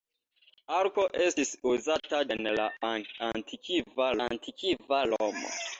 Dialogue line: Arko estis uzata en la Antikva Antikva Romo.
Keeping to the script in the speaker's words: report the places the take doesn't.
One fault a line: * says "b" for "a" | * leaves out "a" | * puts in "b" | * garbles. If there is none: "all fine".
all fine